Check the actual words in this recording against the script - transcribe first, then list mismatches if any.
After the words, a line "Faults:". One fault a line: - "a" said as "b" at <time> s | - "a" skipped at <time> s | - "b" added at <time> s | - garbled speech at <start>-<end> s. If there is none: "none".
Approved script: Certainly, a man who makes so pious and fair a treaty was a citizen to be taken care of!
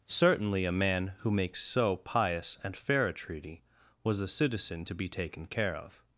Certainly, a man who makes so pious and fair a treaty was a citizen to be taken care of!
Faults:
none